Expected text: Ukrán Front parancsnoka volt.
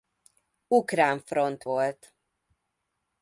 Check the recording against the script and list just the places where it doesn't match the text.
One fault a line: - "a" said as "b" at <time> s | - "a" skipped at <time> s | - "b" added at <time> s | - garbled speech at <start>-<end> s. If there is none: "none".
- "parancsnoka" skipped at 1.6 s